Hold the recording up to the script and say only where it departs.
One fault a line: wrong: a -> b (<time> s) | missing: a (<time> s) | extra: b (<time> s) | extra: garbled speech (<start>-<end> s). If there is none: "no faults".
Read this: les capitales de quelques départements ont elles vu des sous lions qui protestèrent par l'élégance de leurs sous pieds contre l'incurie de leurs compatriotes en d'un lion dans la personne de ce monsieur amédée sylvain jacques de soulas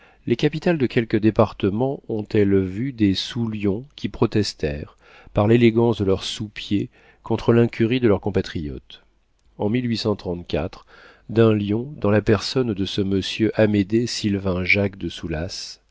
no faults